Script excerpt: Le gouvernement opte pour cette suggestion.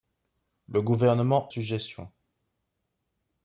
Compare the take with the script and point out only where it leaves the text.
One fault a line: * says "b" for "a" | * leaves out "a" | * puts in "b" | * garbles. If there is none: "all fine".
* leaves out "opte pour cette"